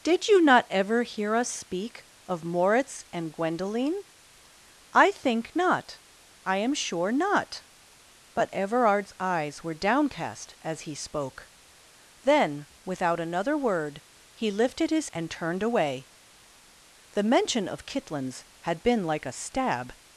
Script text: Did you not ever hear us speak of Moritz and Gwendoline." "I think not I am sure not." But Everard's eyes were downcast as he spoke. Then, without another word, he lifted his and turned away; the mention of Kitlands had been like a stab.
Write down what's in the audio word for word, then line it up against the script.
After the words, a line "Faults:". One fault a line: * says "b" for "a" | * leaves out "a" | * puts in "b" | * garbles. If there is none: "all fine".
Did you not ever hear us speak of Moritz and Gwendoline." "I think not I am sure not." But Everard's eyes were downcast as he spoke. Then, without another word, he lifted his and turned away; the mention of Kitlands had been like a stab.
Faults:
all fine